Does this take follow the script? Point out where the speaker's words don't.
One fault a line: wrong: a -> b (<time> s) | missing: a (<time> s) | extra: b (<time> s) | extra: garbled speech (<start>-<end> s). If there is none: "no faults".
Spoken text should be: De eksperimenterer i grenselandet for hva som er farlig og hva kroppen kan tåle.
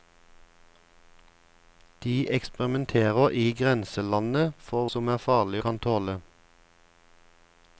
missing: hva (4.9 s)
missing: og hva kroppen (5.6 s)